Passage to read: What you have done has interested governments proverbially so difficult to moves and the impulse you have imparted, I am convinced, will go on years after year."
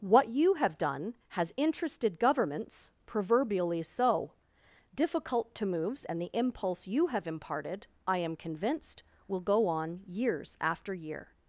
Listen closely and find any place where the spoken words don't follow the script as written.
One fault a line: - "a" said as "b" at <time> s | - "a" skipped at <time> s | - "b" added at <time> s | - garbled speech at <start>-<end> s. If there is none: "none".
none